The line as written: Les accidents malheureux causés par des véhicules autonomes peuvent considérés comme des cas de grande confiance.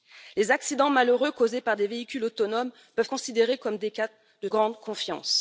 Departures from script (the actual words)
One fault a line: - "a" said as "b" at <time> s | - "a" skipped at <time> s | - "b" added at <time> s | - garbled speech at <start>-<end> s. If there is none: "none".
none